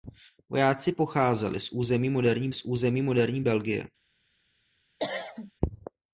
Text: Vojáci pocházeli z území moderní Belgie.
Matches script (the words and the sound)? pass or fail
fail